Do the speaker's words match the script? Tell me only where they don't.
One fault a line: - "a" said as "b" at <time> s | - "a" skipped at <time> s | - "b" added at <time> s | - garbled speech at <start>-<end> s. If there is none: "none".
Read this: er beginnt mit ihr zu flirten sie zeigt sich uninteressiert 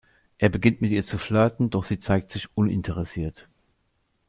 - "doch" added at 1.7 s